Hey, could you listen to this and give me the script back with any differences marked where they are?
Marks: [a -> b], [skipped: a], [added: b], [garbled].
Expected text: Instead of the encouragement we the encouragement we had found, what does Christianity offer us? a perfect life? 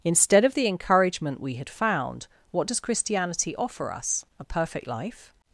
Instead of the encouragement we [skipped: the encouragement we] had found, what does Christianity offer us? a perfect life?